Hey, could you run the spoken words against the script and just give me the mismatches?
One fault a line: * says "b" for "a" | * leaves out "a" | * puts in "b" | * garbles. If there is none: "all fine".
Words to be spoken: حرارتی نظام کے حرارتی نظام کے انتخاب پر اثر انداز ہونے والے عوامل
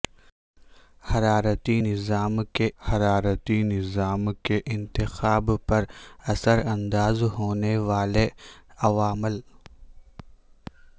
all fine